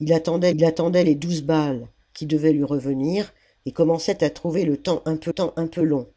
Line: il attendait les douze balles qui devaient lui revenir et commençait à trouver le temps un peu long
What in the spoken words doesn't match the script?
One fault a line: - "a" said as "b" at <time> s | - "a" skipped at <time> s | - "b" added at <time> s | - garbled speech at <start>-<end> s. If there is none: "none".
- "il attendait" added at 0.5 s
- "temps un peu" added at 5.3 s